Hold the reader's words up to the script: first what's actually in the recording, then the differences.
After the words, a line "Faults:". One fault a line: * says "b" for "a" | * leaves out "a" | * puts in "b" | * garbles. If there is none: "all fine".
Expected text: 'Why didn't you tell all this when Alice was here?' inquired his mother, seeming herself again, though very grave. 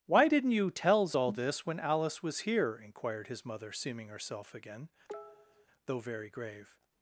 'Why didn't you tells all this when Alice was here?' inquired his mother, seeming herself again, though very grave.
Faults:
* says "tells" for "tell"